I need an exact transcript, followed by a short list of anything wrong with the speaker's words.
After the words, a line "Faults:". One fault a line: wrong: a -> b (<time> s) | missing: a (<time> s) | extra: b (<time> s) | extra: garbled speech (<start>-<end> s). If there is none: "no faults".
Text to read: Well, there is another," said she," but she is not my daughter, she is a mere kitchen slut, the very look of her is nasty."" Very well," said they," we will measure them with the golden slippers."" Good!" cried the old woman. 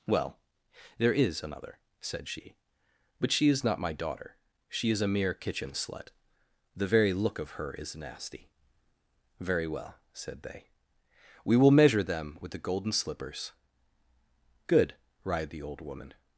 Well, there is another," said she," but she is not my daughter, she is a mere kitchen slut, the very look of her is nasty."" Very well," said they," we will measure them with the golden slippers."" Good!" cried the old woman.
Faults:
no faults